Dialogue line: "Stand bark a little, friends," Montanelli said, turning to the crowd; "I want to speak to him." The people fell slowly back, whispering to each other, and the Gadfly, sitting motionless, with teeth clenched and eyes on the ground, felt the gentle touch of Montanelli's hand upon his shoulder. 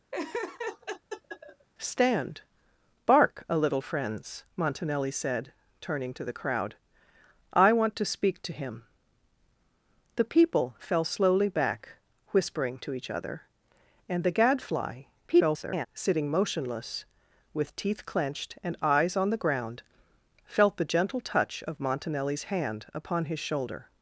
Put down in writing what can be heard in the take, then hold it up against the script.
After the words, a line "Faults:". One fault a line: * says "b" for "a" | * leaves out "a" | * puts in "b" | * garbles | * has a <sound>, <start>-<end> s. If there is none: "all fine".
"Stand bark a little, friends," Montanelli said, turning to the crowd; "I want to speak to him." The people fell slowly back, whispering to each other, and the Gadfly, [garbled] sitting motionless, with teeth clenched and eyes on the ground, felt the gentle touch of Montanelli's hand upon his shoulder.
Faults:
* has a laugh, 0.1-1.7 s
* garbles